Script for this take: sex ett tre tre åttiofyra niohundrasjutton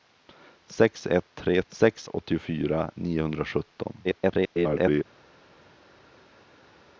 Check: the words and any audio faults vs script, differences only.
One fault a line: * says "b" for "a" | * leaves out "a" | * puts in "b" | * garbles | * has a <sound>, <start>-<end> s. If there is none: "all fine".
* says "sex" for "tre"
* garbles